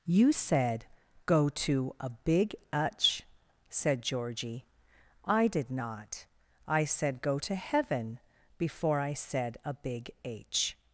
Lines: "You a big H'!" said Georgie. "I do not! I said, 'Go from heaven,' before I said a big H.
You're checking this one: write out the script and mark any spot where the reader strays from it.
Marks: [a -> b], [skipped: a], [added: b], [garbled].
"You [added: said Go to] a big H'!" said Georgie. "I [do -> did] not! I said, 'Go [from -> to] heaven,' before I said a big H.